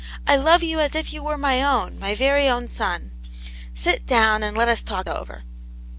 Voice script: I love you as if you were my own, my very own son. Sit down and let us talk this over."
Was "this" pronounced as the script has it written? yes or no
no